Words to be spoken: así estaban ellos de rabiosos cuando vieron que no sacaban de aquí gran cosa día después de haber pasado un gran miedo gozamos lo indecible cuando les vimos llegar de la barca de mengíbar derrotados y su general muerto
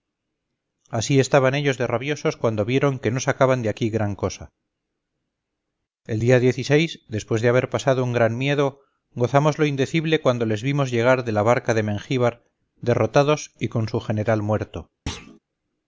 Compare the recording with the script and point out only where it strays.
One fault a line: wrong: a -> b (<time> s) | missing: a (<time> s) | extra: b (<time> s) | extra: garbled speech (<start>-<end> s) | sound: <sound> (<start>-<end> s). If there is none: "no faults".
extra: el (6.1 s)
extra: con (13.7 s)
sound: thud (15.1-15.4 s)